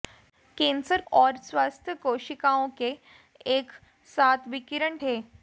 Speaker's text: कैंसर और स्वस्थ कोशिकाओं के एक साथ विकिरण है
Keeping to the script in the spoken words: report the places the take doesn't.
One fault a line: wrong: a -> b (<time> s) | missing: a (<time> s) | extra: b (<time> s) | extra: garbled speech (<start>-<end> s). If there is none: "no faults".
no faults